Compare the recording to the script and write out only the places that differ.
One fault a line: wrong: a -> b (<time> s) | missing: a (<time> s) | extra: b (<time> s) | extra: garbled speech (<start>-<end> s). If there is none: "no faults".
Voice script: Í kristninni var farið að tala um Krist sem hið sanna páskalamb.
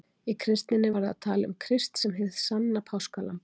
missing: var (0.9 s)